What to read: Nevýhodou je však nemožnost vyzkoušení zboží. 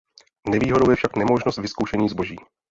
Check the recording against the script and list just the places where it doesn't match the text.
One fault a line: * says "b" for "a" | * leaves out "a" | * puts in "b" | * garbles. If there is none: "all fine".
all fine